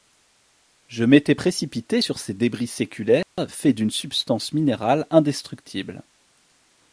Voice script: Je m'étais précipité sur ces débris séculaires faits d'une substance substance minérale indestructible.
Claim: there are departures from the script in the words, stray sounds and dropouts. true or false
true